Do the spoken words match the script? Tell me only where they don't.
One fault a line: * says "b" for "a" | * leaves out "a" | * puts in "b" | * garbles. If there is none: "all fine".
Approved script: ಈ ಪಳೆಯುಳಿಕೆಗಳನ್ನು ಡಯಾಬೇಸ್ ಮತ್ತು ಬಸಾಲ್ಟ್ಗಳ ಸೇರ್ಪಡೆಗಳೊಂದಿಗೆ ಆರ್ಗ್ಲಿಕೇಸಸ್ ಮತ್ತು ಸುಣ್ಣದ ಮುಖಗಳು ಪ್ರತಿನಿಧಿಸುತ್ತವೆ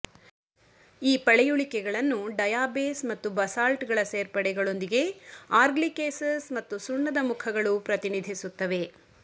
all fine